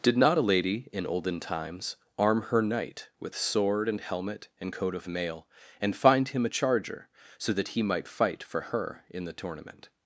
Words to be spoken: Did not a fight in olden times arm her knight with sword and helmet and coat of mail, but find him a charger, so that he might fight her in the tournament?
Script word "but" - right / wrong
wrong